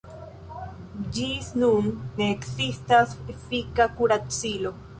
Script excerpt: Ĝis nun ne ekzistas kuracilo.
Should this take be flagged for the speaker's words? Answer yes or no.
yes